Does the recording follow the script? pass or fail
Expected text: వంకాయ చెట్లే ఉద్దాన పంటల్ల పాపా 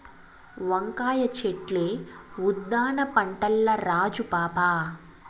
fail